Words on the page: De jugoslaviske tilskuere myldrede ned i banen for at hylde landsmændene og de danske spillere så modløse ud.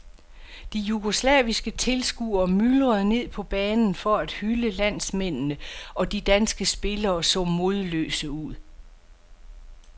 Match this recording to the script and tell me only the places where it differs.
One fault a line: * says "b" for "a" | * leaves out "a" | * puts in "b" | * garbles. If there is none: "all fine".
* says "på" for "i"